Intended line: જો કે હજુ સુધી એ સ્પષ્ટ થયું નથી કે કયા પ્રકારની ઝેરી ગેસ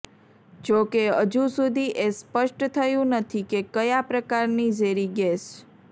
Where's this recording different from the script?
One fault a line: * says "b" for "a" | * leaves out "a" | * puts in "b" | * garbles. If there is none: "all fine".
all fine